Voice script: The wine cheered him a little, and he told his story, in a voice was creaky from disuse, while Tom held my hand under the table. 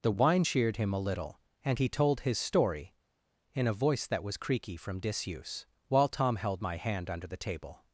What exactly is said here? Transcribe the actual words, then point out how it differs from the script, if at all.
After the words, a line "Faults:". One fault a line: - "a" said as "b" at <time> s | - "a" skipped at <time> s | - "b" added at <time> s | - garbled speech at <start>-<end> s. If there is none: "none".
The wine cheered him a little, and he told his story, in a voice that was creaky from disuse, while Tom held my hand under the table.
Faults:
- "that" added at 4.1 s